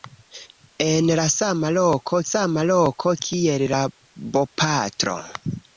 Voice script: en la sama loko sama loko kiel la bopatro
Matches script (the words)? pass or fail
pass